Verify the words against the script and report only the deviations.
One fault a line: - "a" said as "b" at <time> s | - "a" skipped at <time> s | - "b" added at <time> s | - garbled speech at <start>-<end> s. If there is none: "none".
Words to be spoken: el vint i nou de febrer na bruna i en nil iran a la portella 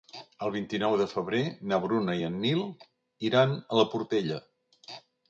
none